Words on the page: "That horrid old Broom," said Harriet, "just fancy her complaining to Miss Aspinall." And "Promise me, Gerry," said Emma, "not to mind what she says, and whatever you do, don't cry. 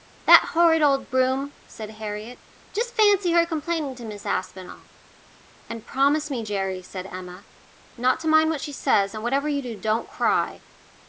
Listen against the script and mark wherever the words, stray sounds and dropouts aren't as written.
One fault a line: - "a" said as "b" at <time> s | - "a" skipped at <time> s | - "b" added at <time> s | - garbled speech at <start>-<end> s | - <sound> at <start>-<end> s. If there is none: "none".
none